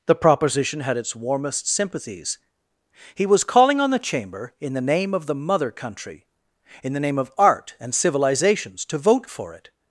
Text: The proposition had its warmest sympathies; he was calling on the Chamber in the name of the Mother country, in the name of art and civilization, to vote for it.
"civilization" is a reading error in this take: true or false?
true